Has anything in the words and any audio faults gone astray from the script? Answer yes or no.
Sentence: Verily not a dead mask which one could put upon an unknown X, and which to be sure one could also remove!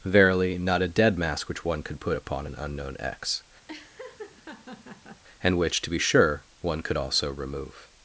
yes